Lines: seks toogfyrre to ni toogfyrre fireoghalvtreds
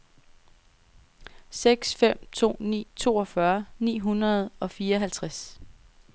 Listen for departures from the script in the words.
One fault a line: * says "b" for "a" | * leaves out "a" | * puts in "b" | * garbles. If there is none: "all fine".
* says "fem" for "toogfyrre"
* puts in "ni hundrede og"